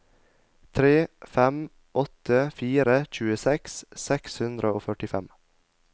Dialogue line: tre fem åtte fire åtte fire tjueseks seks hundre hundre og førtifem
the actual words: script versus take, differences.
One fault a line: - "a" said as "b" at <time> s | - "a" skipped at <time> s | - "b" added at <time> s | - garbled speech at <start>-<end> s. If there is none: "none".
- "åtte fire" skipped at 3.0 s
- "hundre" skipped at 4.7 s